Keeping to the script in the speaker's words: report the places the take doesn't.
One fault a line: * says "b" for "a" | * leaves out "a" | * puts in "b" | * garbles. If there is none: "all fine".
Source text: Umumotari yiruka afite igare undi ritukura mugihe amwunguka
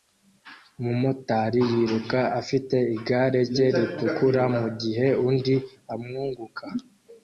* says "rye" for "undi"
* puts in "undi"